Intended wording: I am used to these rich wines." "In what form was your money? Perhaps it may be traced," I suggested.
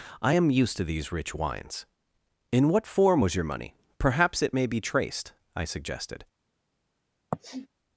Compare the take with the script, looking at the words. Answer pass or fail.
pass